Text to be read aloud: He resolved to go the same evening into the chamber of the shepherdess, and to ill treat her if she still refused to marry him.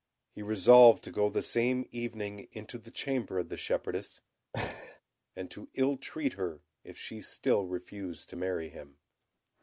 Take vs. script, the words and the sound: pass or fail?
fail